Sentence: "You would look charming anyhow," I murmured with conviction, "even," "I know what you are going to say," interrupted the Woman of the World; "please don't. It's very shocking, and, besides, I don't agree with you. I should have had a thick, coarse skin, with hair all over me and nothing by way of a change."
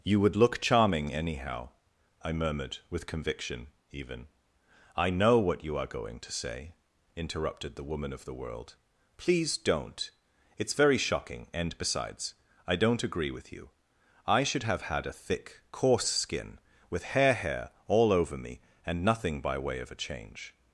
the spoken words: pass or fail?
fail